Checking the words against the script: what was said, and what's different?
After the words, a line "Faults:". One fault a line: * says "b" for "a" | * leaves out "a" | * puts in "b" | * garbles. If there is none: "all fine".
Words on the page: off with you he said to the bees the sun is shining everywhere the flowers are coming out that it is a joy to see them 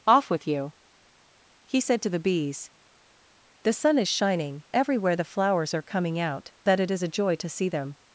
off with you he said to the bees the sun is shining everywhere the flowers are coming out that it is a joy to see them
Faults:
all fine